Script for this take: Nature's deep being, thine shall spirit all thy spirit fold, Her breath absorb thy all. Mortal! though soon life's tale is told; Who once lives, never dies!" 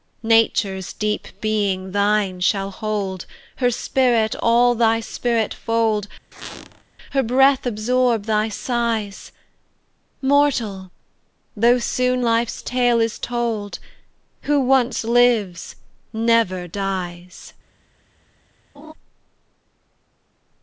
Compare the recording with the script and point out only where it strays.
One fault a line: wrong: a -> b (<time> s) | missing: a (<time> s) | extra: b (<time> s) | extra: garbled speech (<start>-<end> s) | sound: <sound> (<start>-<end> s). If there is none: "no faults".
extra: hold Her (2.7 s)
sound: squeak (6.3-6.8 s)
wrong: all -> sighs (8.5 s)
sound: laugh (18.7-18.9 s)